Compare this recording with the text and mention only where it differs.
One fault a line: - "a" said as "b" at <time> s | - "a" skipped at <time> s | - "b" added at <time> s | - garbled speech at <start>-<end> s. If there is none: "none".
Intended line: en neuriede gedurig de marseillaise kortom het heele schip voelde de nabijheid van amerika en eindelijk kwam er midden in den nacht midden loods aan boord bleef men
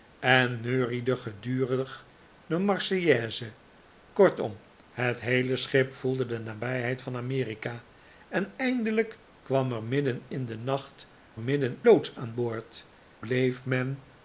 none